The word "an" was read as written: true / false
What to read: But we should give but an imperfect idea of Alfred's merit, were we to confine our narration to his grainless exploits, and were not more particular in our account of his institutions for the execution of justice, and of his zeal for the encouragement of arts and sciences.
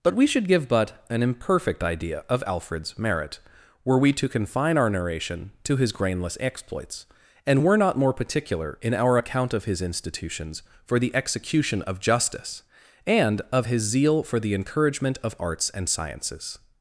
true